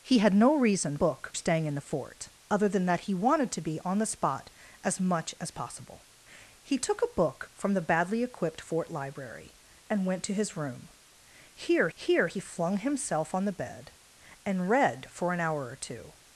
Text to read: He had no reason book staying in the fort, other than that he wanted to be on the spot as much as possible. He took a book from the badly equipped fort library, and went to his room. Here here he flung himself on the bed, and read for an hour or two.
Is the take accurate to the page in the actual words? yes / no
yes